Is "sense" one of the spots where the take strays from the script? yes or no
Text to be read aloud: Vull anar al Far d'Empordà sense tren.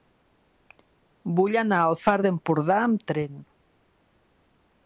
yes